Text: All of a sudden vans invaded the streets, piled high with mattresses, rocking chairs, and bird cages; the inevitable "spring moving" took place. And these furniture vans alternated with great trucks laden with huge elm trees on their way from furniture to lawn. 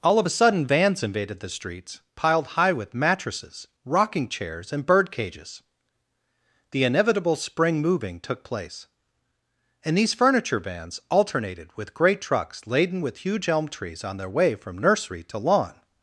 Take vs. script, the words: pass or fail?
fail